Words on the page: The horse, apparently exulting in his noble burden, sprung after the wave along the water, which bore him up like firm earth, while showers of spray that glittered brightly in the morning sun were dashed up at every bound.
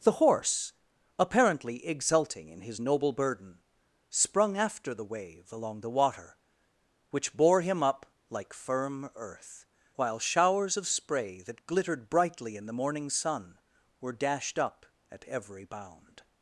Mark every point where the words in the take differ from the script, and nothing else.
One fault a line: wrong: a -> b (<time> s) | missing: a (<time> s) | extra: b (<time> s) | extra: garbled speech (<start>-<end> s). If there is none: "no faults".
no faults